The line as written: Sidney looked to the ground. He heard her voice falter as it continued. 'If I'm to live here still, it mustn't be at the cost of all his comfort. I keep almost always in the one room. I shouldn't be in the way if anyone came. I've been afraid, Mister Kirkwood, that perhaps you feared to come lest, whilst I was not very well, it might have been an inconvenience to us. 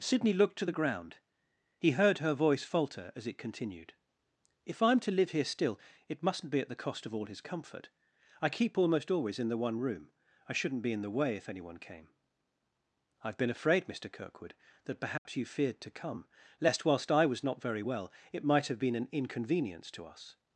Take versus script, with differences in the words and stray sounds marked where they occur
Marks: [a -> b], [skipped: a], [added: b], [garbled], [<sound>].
Sidney looked to the ground. He heard her voice falter as it continued. 'If I'm to live here still, it mustn't be at the cost of all his comfort. I keep almost always in the one room. I shouldn't be in the way if anyone came. I've been afraid, Mister Kirkwood, that perhaps [dropout] you feared to come lest, whilst I was not very well, it might have been an inconvenience to us.